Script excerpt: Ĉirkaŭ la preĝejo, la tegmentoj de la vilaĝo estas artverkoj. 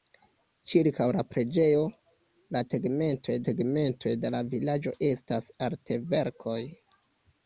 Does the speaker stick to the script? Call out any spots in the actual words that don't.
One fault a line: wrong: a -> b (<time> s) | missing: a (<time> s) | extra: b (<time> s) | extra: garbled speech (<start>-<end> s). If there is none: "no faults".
extra: tegmentoj (3.5 s)